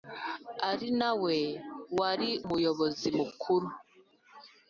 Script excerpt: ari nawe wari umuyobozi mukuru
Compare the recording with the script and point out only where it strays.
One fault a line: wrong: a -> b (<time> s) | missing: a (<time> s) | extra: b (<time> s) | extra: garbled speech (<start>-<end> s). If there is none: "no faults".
no faults